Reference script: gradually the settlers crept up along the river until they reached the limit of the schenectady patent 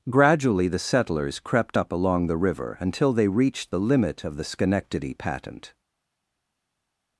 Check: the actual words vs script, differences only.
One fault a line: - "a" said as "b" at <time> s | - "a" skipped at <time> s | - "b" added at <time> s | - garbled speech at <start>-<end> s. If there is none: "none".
none